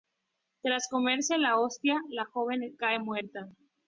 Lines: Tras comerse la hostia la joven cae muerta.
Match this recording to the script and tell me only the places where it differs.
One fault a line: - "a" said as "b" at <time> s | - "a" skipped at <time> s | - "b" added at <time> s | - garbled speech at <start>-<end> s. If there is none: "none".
none